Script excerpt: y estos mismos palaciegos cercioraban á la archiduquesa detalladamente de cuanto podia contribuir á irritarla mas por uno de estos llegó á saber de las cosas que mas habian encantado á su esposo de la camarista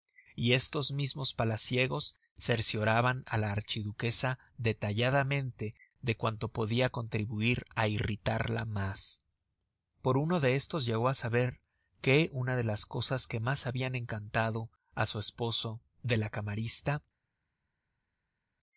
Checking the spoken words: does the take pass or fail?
fail